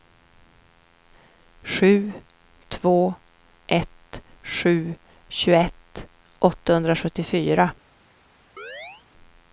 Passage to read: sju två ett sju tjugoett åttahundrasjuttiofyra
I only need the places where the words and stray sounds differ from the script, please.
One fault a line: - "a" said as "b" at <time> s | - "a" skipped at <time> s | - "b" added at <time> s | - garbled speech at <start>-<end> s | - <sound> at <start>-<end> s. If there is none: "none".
- chirp at 8.6-9.1 s